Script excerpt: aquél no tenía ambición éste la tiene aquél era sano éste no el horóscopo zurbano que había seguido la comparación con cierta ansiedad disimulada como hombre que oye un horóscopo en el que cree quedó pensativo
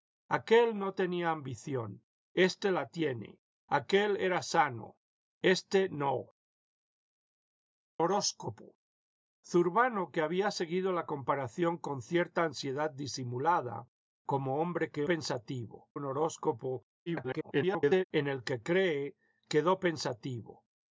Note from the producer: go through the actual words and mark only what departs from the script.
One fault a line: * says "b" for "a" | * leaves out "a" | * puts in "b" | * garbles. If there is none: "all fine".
* leaves out "el"
* says "pensativo" for "oye"
* garbles